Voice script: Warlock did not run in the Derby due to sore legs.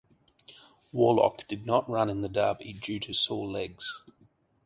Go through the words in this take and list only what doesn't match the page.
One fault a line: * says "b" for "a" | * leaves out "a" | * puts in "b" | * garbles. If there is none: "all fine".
all fine